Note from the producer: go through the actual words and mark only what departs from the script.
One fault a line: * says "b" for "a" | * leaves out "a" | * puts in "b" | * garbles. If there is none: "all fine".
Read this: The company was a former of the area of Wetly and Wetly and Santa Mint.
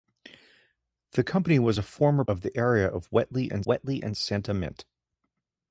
all fine